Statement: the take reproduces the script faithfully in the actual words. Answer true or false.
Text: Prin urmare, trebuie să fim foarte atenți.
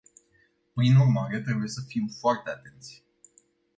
true